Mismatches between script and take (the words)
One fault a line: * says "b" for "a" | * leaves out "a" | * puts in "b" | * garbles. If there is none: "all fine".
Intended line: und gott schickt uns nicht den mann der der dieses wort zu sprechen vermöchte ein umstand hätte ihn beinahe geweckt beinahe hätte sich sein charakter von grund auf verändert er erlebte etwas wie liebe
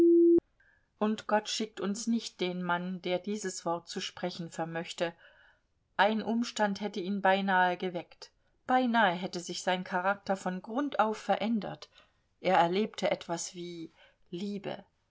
* leaves out "der"